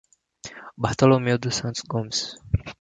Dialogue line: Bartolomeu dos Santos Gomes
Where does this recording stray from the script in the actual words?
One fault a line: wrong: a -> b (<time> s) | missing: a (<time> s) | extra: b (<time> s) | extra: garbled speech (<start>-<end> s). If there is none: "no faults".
no faults